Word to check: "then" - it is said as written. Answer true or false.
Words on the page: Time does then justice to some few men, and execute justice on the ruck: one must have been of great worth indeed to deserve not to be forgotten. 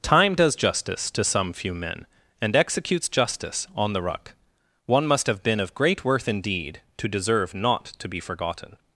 false